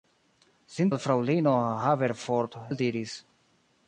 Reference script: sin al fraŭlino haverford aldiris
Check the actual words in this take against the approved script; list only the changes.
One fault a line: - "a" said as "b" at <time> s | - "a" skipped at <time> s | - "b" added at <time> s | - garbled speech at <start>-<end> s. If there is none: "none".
none